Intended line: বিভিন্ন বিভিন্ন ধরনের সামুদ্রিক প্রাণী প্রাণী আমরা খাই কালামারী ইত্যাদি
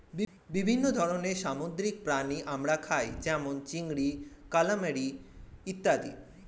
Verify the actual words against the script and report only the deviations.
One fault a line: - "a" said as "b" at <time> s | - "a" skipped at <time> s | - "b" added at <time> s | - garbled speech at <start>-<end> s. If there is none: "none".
- "বিভিন্ন" skipped at 0.8 s
- "প্রাণী" skipped at 2.4 s
- "যেমন চিংড়ি" added at 3.2 s